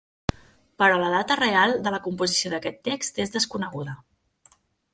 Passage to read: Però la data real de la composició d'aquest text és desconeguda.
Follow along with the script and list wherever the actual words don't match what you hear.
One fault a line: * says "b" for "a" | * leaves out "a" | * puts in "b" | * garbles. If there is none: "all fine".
all fine